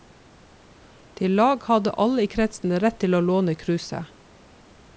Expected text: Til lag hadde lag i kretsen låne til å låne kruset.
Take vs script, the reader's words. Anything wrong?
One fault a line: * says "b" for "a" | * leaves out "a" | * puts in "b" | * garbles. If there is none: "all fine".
* says "alle" for "lag"
* says "rett" for "låne"